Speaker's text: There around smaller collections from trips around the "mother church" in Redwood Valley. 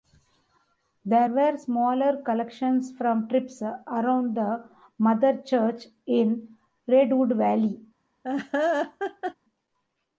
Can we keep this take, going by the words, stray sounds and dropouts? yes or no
no